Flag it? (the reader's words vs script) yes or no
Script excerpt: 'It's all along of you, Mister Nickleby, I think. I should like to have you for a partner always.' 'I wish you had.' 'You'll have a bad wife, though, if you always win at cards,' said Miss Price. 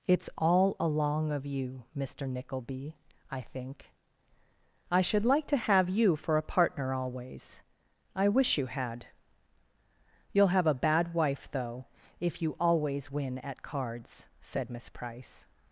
no